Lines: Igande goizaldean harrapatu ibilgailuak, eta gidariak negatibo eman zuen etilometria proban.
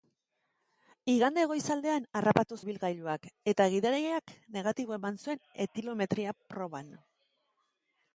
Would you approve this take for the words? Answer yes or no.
yes